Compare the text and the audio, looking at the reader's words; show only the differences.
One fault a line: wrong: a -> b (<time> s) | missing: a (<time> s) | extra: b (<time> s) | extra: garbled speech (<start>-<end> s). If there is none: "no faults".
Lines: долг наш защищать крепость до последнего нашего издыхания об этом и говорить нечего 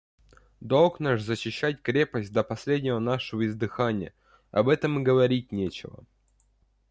no faults